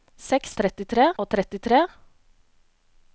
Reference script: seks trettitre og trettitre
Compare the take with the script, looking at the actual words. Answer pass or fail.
pass